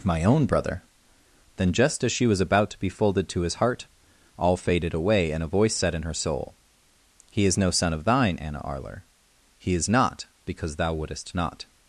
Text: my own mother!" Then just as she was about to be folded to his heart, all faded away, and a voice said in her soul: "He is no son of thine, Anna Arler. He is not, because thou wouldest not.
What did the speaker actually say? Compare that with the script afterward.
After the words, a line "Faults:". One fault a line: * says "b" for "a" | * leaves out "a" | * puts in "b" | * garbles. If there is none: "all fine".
my own brother!" Then just as she was about to be folded to his heart, all faded away, and a voice said in her soul: "He is no son of thine, Anna Arler. He is not, because thou wouldest not.
Faults:
* says "brother" for "mother"